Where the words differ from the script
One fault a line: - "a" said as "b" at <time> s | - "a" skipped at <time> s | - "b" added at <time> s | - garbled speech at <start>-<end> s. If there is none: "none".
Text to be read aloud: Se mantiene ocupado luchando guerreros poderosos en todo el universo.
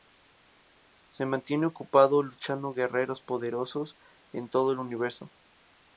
none